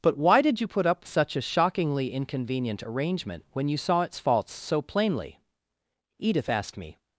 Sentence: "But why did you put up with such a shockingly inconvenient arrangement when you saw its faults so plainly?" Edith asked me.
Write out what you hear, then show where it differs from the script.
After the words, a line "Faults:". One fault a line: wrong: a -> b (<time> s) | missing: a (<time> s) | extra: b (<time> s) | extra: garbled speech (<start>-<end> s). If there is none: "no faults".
"But why did you put up such a shockingly inconvenient arrangement when you saw its faults so plainly?" Edith asked me.
Faults:
missing: with (1.1 s)